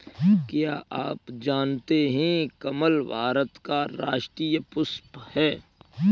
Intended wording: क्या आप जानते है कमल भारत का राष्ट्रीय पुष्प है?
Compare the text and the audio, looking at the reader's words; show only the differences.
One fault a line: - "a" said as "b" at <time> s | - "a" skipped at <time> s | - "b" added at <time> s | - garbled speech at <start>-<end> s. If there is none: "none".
none